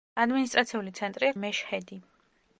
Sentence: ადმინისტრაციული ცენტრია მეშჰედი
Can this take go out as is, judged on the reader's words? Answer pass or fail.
pass